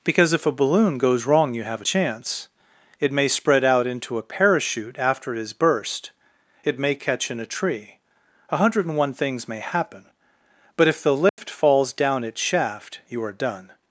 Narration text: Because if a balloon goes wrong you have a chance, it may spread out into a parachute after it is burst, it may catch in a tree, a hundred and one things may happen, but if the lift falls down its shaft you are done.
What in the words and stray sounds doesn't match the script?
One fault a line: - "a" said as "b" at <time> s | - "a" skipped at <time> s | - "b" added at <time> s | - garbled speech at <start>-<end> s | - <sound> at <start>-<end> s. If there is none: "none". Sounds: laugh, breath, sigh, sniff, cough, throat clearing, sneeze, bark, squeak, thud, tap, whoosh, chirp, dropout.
- dropout at 11.3-11.4 s